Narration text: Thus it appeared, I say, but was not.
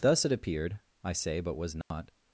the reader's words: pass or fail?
pass